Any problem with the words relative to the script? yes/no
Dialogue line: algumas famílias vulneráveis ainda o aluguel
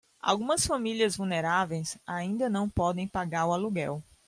yes